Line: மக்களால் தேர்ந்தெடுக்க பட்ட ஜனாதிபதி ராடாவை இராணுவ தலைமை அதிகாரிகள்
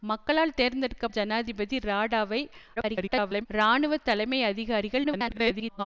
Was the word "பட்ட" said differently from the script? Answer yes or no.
yes